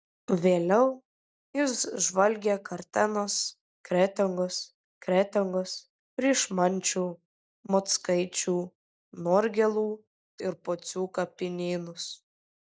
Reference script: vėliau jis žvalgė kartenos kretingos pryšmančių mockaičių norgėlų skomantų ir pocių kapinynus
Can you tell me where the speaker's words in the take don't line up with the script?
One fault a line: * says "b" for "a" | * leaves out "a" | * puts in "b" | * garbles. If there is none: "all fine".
* puts in "kretingos"
* leaves out "skomantų"